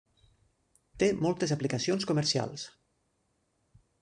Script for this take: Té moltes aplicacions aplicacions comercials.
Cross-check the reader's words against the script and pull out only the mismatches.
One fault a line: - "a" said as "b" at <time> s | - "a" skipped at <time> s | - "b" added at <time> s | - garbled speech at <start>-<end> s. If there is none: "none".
- "aplicacions" skipped at 2.1 s